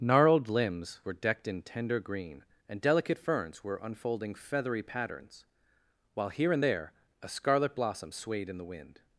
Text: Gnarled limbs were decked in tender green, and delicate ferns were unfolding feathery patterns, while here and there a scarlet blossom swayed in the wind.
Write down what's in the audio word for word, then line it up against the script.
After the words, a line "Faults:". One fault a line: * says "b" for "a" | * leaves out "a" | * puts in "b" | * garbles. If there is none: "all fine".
Gnarled limbs were decked in tender green, and delicate ferns were unfolding feathery patterns, while here and there a scarlet blossom swayed in the wind.
Faults:
all fine